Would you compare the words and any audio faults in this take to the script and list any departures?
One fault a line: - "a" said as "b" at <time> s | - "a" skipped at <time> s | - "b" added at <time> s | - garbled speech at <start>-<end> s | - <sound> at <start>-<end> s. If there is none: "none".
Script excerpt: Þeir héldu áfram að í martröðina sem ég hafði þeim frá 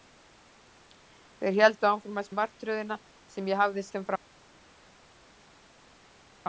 none